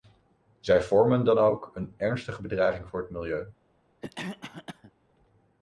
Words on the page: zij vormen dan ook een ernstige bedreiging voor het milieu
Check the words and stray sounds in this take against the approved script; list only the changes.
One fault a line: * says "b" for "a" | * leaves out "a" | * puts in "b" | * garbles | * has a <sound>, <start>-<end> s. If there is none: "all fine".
* has a cough, 4.0-4.9 s